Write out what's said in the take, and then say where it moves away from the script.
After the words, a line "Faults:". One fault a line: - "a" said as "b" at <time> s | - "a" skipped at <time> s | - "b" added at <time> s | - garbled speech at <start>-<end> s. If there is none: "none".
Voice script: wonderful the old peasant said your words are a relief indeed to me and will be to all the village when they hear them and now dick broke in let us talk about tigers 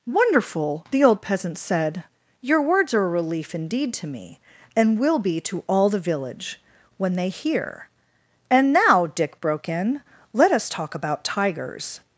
wonderful the old peasant said your words are a relief indeed to me and will be to all the village when they hear and now dick broke in let us talk about tigers
Faults:
- "them" skipped at 7.9 s